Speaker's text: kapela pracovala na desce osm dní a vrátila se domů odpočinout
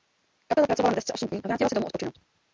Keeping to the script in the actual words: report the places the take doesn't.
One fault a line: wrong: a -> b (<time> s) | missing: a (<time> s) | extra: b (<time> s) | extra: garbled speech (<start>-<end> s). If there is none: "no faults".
no faults